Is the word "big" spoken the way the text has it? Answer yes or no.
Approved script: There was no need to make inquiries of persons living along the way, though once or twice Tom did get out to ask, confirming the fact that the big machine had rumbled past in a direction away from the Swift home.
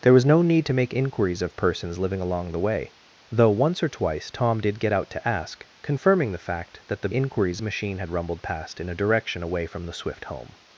no